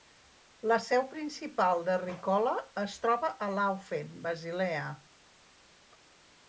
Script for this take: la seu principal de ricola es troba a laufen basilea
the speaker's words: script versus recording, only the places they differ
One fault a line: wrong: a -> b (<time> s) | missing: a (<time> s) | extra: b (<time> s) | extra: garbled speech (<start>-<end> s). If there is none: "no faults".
no faults